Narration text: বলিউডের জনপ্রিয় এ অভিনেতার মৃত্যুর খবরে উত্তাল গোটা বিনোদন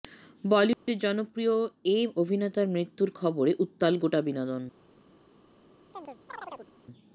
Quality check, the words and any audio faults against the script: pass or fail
fail